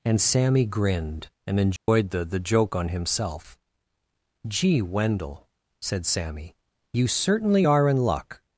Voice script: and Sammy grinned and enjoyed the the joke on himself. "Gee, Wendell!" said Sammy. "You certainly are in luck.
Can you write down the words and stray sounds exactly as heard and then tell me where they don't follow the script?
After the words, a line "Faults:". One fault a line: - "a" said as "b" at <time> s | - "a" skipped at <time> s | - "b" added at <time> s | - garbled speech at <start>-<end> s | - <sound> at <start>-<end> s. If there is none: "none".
and Sammy grinned and enjoyed the the joke on himself. "Gee, Wendell!" said Sammy. "You certainly are in luck.
Faults:
- dropout at 1.8-1.9 s